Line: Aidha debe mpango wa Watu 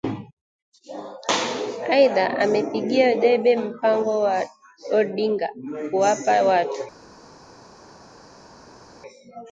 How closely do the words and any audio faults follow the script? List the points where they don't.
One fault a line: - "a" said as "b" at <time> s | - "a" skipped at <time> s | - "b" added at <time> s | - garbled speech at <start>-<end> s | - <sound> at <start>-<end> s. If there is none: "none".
- "amepigia" added at 2.4 s
- "Odinga kuwapa" added at 4.9 s